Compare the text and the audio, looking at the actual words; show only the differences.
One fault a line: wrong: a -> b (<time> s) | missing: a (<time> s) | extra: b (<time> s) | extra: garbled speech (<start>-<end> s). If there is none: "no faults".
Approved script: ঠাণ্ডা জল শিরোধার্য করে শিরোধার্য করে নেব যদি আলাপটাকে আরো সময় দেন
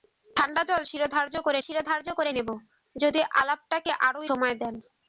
no faults